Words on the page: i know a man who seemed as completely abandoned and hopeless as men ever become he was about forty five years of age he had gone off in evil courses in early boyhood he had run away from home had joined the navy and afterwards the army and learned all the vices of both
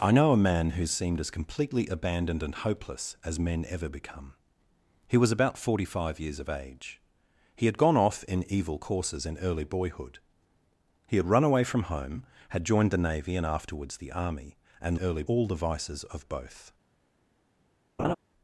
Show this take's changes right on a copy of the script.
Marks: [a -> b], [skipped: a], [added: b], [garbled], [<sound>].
i know a man who seemed as completely abandoned and hopeless as men ever become he was about forty five years of age he had gone off in evil courses in early boyhood he had run away from home had joined the navy and afterwards the army and [learned -> early] all the vices of both [laugh]